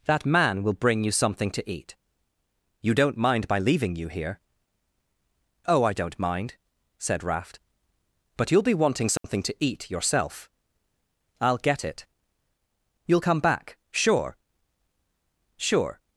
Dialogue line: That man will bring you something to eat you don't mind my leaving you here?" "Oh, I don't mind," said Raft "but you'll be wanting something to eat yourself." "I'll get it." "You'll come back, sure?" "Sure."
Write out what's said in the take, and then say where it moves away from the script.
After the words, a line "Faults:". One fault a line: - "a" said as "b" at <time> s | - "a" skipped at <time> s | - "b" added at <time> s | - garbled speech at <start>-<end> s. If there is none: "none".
That man will bring you something to eat you don't mind my leaving you here?" "Oh, I don't mind," said Raft "but you'll be wanting something to eat yourself." "I'll get it." "You'll come back, sure?" "Sure."
Faults:
none